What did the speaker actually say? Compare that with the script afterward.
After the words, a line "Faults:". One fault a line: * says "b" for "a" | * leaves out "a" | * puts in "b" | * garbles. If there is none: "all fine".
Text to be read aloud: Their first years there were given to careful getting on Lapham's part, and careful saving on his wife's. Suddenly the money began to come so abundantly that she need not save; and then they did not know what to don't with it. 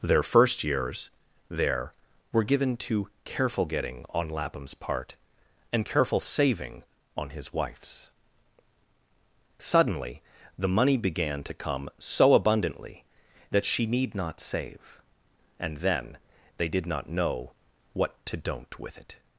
Their first years there were given to careful getting on Lapham's part, and careful saving on his wife's. Suddenly the money began to come so abundantly that she need not save; and then they did not know what to don't with it.
Faults:
all fine